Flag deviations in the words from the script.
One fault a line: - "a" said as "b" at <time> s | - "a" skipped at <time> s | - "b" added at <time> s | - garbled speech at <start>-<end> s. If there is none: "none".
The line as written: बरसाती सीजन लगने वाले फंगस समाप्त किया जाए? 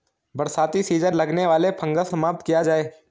none